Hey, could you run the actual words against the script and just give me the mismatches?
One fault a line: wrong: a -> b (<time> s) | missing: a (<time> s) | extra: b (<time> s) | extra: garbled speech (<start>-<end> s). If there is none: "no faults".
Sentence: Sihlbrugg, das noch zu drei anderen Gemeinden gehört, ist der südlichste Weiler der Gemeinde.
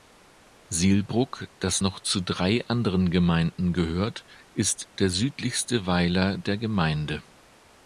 no faults